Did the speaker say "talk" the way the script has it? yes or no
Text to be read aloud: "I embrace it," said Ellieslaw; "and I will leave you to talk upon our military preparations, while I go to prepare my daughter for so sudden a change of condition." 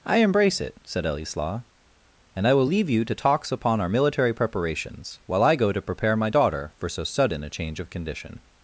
no